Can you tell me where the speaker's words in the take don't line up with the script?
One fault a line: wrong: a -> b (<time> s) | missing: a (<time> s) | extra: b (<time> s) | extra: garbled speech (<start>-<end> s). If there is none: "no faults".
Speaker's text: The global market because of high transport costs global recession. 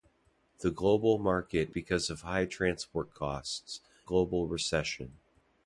no faults